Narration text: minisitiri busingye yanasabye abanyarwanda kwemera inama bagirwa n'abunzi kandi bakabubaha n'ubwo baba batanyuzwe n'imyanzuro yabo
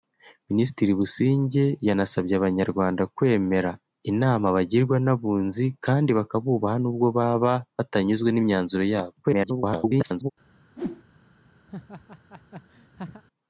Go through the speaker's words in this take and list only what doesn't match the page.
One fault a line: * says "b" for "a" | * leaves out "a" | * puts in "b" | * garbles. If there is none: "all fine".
* garbles